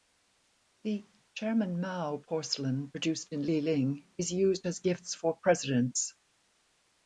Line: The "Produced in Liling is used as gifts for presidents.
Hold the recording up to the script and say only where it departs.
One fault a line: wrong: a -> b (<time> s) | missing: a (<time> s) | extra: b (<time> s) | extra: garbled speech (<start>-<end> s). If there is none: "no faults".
extra: Chairman Mao porcelain (1.4 s)